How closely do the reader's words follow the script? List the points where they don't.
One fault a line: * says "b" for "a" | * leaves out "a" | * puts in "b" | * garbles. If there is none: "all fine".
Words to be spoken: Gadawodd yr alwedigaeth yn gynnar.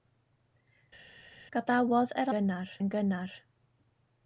* says "gynnar" for "alwedigaeth"